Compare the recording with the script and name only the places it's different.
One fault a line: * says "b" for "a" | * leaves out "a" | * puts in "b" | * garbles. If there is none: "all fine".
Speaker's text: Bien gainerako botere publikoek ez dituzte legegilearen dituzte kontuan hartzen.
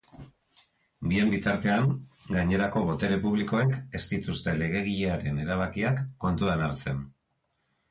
* puts in "bitartean"
* says "erabakiak" for "dituzte"